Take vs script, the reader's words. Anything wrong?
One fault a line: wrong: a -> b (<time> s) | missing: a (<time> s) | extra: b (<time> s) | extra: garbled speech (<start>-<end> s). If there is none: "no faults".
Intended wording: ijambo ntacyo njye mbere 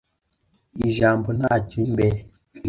missing: njye (1.8 s)